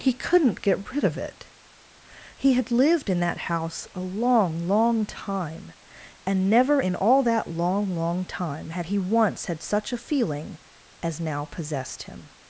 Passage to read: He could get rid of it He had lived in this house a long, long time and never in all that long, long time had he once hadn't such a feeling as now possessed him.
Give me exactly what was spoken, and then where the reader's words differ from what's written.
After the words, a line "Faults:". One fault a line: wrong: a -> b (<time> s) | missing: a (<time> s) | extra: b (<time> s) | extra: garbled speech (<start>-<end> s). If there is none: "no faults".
He couldn't get rid of it He had lived in that house a long, long time and never in all that long, long time had he once had such a feeling as now possessed him.
Faults:
wrong: could -> couldn't (0.1 s)
wrong: this -> that (3.2 s)
wrong: hadn't -> had (9.5 s)